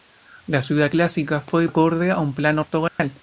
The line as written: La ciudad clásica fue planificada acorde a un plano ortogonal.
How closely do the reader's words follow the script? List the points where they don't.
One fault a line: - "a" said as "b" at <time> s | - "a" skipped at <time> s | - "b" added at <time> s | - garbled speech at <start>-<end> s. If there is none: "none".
- "planificada" skipped at 1.7 s